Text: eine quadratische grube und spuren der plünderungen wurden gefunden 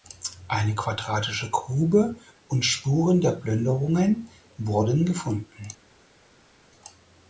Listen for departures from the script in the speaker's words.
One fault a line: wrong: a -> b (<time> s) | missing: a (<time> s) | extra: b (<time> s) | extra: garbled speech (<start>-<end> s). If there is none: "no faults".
no faults